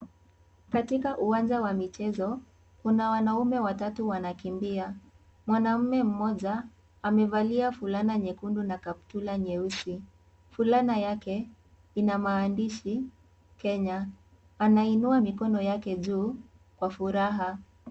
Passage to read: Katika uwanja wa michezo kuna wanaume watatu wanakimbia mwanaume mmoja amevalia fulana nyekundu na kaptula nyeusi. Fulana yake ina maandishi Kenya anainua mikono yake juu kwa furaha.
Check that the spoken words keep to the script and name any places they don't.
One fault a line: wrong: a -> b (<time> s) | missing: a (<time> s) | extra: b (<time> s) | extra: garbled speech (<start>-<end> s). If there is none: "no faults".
no faults